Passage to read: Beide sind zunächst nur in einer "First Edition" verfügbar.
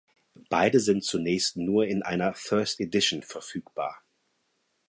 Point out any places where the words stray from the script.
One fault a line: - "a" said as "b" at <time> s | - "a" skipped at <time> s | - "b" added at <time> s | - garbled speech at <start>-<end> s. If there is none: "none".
none